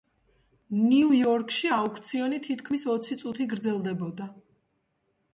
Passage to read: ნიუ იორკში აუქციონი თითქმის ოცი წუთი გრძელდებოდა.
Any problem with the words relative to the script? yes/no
no